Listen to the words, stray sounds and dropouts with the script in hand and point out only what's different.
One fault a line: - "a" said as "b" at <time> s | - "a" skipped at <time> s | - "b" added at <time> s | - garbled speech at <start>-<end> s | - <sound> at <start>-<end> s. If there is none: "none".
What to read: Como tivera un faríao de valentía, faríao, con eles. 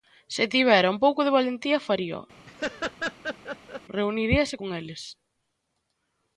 - "Como" said as "Se" at 0.3 s
- "faríao" said as "pouco" at 1.0 s
- laugh at 2.5-3.8 s
- "reuniríase" added at 4.0 s